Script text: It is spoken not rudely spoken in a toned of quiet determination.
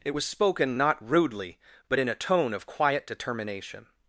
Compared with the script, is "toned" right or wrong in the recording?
wrong